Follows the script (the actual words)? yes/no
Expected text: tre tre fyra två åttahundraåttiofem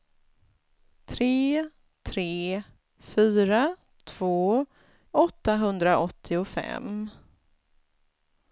yes